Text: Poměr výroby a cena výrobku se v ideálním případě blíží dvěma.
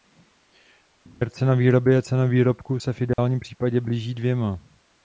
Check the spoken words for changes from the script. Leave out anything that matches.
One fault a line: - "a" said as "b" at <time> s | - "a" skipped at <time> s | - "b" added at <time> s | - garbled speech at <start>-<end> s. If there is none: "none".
- "cena" added at 1.3 s